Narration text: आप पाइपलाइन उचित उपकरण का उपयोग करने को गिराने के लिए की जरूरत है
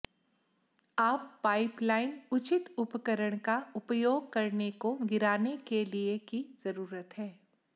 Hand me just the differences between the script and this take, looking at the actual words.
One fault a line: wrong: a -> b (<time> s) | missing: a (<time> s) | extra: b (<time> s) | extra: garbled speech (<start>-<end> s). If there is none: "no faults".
no faults